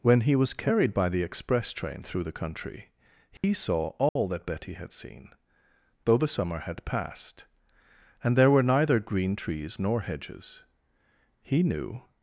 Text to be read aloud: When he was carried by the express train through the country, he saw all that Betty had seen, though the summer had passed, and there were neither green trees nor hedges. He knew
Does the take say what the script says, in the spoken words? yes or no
yes